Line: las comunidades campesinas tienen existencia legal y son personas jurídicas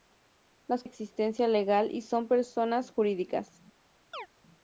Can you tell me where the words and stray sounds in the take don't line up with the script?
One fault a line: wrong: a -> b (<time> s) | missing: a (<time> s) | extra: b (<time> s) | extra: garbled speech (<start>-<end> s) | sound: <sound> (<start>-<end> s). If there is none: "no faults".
missing: comunidades campesinas tienen (0.8 s)
sound: chirp (4.1-4.3 s)